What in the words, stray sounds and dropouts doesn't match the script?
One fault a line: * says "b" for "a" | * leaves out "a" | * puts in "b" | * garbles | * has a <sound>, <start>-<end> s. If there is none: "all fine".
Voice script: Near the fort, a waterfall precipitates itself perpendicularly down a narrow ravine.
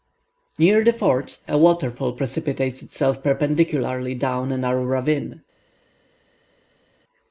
all fine